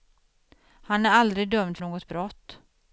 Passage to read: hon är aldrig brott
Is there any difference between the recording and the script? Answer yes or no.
yes